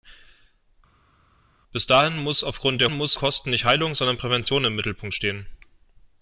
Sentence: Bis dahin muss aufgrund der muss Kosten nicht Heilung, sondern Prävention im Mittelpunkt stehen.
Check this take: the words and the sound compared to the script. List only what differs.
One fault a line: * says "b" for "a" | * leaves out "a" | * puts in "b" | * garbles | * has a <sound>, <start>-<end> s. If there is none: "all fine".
all fine